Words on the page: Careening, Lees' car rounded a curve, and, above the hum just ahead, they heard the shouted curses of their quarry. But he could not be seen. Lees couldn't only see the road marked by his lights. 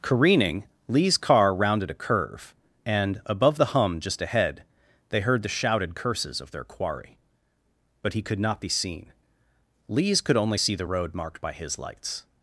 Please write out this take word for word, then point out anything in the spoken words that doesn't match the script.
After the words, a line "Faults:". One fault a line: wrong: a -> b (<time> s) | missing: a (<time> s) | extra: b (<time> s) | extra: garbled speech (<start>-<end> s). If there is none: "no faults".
Careening, Lees' car rounded a curve, and, above the hum just ahead, they heard the shouted curses of their quarry. But he could not be seen. Lees could only see the road marked by his lights.
Faults:
wrong: couldn't -> could (10.2 s)